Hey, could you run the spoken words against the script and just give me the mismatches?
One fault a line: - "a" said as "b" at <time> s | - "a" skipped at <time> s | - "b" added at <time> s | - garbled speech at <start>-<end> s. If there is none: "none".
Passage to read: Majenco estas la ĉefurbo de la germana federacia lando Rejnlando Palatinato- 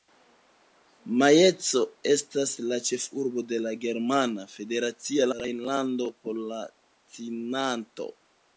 - "lando" skipped at 5.3 s